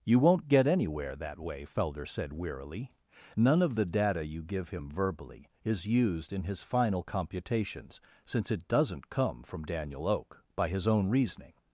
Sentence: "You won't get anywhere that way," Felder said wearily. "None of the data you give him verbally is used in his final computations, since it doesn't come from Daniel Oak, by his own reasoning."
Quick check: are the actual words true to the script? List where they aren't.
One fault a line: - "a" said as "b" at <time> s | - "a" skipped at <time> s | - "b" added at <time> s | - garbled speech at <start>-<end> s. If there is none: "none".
none